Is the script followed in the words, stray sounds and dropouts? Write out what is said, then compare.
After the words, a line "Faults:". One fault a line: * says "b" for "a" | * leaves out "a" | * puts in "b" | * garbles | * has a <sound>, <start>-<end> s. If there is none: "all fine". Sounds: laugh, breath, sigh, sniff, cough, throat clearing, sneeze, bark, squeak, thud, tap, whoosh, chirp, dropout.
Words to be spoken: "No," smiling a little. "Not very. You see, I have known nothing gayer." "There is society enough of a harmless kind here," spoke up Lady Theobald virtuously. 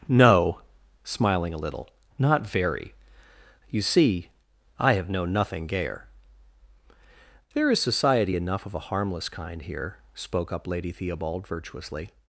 "No," smiling a little. "Not very. You see, I have known nothing gayer." "There is society enough of a harmless kind here," spoke up Lady Theobald virtuously.
Faults:
all fine